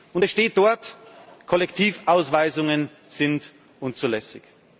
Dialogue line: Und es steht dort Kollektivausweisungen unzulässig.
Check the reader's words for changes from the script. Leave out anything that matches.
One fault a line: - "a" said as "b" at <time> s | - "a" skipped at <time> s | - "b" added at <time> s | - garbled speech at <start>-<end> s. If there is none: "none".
- "sind" added at 3.1 s